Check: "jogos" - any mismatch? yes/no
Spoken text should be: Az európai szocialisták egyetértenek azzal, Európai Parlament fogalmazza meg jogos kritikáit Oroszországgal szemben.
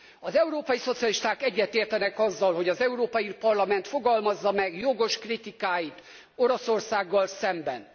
no